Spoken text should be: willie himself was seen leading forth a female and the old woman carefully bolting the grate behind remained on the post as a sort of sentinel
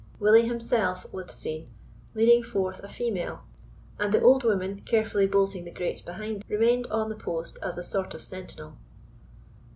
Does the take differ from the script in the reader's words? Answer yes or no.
no